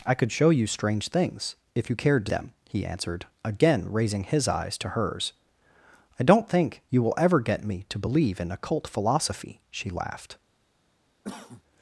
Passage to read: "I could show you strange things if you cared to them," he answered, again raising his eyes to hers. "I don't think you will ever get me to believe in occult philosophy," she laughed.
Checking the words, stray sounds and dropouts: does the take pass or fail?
fail